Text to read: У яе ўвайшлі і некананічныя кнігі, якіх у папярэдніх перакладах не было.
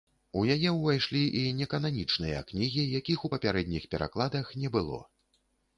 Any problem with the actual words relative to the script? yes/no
no